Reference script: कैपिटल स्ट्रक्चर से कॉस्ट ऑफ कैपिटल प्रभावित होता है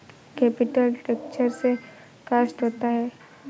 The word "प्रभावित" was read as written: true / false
false